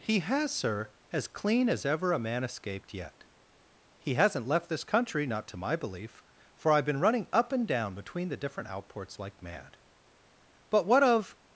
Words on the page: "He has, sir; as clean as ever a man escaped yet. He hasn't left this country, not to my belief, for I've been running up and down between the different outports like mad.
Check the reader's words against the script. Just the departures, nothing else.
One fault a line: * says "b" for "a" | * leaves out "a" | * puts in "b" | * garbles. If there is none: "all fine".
* puts in "But what of"